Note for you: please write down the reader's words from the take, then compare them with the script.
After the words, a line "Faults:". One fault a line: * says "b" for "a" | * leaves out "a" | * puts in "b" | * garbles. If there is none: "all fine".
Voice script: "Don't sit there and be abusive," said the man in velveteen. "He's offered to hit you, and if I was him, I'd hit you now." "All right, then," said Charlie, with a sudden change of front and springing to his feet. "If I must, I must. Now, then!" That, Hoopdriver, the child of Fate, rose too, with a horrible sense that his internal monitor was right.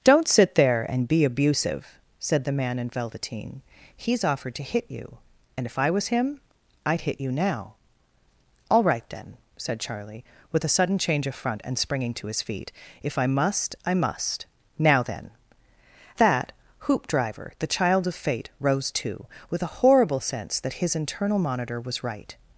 "Don't sit there and be abusive," said the man in velveteen. "He's offered to hit you, and if I was him, I'd hit you now." "All right, then," said Charlie, with a sudden change of front and springing to his feet. "If I must, I must. Now, then!" That, Hoopdriver, the child of Fate, rose too, with a horrible sense that his internal monitor was right.
Faults:
all fine